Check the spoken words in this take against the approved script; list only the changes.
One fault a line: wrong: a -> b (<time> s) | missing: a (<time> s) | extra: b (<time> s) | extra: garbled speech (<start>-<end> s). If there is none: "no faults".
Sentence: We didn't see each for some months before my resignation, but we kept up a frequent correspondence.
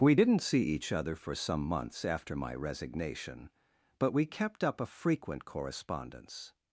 extra: other (0.9 s)
wrong: before -> after (2.0 s)